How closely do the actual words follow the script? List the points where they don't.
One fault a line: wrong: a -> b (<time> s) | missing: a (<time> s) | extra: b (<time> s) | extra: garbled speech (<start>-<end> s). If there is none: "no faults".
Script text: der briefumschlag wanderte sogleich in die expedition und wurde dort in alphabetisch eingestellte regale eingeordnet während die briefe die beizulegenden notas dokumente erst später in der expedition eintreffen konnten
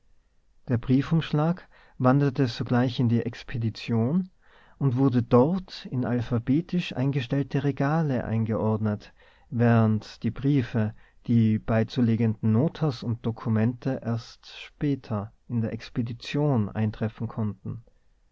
extra: und (13.0 s)